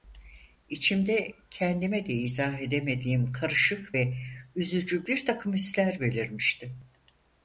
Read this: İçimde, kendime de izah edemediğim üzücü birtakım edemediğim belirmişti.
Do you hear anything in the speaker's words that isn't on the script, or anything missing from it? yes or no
yes